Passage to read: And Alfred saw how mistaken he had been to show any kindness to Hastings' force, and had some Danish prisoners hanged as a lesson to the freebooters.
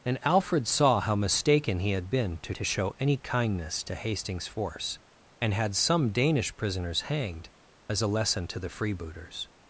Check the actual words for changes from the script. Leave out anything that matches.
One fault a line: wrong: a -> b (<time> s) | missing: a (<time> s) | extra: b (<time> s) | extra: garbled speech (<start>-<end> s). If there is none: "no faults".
extra: to (2.5 s)